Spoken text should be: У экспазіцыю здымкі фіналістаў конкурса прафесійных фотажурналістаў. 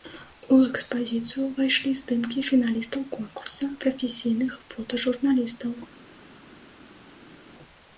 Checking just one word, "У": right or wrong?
right